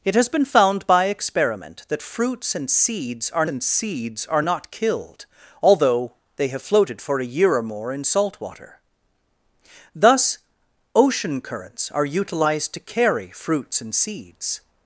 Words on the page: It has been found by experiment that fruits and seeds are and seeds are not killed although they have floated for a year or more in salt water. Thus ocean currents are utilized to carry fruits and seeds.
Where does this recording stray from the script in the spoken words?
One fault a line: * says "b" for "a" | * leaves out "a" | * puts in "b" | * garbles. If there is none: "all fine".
all fine